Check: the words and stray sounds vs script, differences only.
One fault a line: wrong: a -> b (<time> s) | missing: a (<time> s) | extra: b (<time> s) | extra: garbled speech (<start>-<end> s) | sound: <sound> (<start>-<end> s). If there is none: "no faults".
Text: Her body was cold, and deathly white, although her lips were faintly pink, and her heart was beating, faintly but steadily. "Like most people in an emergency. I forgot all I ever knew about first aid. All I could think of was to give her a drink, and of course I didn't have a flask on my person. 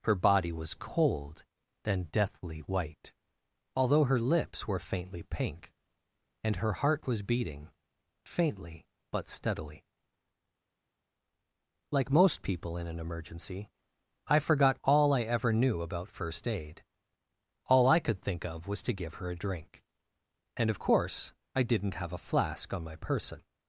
wrong: and -> then (1.8 s)